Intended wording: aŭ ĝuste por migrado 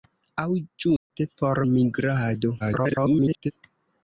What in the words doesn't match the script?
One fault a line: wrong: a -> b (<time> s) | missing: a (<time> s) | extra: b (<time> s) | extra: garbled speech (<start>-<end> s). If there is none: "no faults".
extra: garbled speech (2.6-3.5 s)